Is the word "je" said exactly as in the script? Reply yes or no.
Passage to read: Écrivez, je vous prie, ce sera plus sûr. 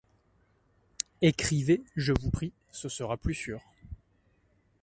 yes